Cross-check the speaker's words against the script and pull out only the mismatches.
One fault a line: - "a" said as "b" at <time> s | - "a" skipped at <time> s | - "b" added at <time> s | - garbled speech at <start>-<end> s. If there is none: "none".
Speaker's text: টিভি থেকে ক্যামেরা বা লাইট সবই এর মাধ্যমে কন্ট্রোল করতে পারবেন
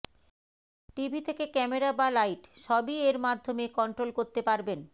none